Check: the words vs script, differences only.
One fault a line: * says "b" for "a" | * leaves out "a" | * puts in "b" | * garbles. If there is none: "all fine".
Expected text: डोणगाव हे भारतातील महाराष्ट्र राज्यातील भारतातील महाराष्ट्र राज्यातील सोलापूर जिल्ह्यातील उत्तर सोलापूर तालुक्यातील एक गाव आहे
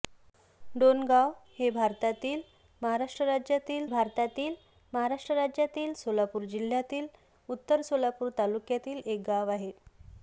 all fine